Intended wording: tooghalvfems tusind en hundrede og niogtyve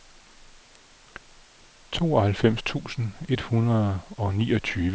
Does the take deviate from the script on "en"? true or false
true